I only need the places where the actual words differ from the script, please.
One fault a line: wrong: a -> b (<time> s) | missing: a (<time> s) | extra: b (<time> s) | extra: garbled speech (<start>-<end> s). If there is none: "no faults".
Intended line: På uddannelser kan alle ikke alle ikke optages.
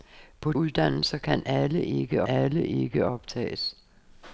no faults